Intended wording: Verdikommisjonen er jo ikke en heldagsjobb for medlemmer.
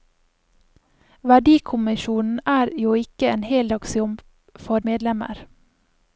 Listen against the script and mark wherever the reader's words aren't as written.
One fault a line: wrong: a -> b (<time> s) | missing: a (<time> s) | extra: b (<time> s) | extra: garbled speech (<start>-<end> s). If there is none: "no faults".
no faults